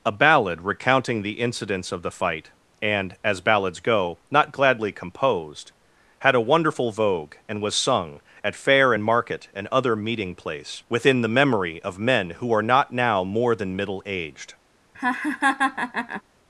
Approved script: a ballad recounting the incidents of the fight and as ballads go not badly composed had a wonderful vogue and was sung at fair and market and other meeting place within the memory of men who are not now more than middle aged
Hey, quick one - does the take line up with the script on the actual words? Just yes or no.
no